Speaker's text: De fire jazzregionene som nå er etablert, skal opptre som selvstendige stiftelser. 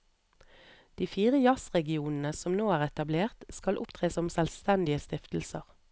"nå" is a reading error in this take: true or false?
false